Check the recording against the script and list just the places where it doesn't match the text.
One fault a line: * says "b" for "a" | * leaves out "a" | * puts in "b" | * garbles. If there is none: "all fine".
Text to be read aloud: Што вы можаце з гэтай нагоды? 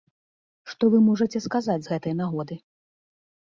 * puts in "сказаць"